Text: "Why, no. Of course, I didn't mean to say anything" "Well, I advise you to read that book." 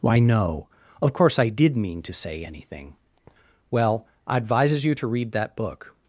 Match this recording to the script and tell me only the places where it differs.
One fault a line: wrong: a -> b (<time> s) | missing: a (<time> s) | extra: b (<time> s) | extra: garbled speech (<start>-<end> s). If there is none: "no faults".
wrong: didn't -> did (1.5 s)
wrong: advise -> advises (4.4 s)